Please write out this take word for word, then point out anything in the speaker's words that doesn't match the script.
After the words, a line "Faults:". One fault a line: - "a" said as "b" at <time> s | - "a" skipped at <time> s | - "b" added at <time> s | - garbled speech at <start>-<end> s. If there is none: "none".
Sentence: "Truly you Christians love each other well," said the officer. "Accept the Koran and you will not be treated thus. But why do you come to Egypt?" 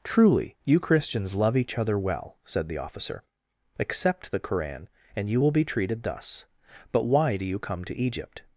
"Truly you Christians love each other well," said the officer. "Accept the Koran and you will be treated thus. But why do you come to Egypt?"
Faults:
- "not" skipped at 5.5 s